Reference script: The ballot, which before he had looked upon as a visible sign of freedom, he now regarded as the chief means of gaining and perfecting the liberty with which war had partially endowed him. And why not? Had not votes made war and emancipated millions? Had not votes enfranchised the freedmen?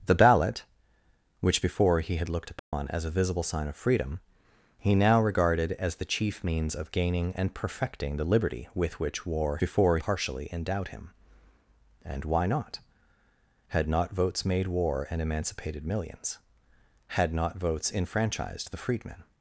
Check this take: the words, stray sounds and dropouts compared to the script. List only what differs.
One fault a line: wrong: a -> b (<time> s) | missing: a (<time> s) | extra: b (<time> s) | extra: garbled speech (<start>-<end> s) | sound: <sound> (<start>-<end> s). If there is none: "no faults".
sound: dropout (2.6-2.7 s)
wrong: had -> before (9.6 s)